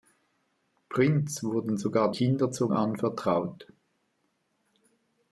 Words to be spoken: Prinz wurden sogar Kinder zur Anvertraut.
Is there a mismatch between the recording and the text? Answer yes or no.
no